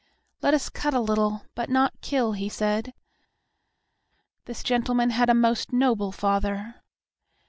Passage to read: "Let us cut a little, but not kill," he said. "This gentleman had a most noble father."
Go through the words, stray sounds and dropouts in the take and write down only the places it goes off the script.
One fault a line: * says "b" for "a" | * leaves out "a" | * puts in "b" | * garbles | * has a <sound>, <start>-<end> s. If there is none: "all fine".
all fine